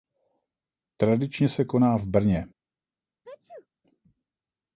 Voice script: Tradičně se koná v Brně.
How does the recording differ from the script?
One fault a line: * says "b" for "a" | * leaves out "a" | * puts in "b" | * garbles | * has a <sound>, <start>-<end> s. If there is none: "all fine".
* has a sneeze, 3.2-3.7 s